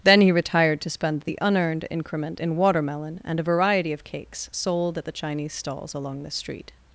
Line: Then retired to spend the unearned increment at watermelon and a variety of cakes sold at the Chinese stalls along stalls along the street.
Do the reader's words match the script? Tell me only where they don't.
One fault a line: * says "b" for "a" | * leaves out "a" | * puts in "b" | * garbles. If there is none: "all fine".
* puts in "he"
* says "in" for "at"
* leaves out "stalls along"